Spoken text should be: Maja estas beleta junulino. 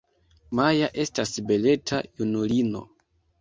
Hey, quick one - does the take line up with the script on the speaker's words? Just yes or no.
yes